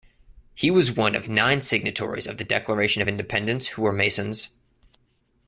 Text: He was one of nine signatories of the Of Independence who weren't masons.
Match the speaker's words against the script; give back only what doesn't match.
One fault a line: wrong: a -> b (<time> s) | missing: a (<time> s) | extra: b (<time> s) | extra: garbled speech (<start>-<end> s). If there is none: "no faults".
extra: Declaration (2.4 s)
wrong: weren't -> were (3.8 s)